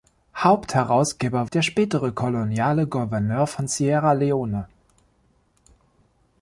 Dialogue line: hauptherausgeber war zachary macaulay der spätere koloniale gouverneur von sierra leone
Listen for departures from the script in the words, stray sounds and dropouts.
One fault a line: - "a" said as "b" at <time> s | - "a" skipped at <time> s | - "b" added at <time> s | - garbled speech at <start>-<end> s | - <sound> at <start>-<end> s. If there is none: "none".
- "war zachary macaulay" skipped at 1.5 s